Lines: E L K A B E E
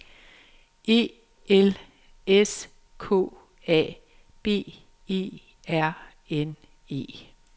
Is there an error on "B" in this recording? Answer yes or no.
no